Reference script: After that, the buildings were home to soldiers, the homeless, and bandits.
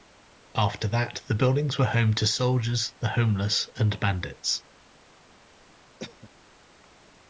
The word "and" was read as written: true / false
true